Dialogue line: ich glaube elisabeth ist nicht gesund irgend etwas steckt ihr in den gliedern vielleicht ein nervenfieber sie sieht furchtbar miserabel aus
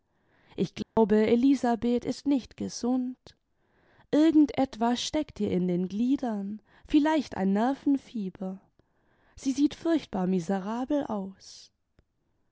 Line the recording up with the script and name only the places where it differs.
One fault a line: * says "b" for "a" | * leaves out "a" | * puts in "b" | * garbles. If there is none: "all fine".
all fine